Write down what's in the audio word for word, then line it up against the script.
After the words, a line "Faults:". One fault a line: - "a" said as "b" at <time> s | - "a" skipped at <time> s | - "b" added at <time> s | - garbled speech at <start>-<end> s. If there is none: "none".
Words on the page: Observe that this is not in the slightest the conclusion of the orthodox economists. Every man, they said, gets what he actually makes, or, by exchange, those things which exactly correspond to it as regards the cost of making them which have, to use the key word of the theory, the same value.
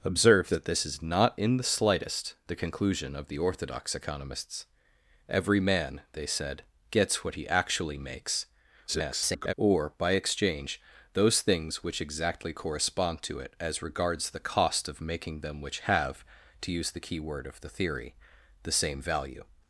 Observe that this is not in the slightest the conclusion of the orthodox economists. Every man, they said, gets what he actually makes, [garbled] or, by exchange, those things which exactly correspond to it as regards the cost of making them which have, to use the key word of the theory, the same value.
Faults:
- garbled speech at 8.9-9.5 s